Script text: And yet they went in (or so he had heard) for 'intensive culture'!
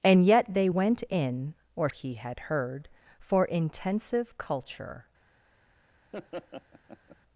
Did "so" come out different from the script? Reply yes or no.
yes